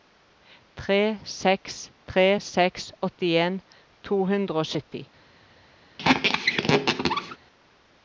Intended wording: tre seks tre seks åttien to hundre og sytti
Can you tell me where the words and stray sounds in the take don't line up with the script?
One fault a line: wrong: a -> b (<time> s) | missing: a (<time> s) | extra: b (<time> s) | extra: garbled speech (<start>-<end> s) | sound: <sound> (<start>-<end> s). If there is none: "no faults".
sound: squeak (6.0-7.4 s)